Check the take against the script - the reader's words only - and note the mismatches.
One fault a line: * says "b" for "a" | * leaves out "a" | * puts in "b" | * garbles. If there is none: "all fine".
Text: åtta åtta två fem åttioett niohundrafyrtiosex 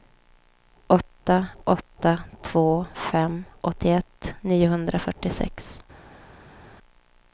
all fine